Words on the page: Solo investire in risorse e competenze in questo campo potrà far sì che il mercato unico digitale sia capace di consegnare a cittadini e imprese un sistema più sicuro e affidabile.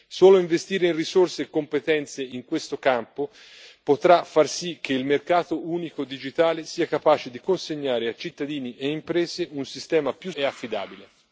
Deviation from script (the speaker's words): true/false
true